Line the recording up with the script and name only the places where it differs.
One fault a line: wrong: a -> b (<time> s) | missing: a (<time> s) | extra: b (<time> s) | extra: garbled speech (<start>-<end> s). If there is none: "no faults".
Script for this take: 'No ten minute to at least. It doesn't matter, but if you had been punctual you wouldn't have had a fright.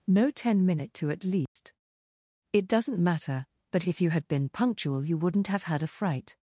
no faults